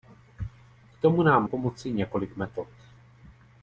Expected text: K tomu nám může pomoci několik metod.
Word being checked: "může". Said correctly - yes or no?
no